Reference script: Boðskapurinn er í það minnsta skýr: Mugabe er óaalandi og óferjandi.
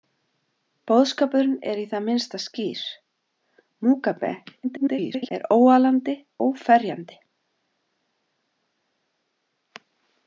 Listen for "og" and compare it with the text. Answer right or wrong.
wrong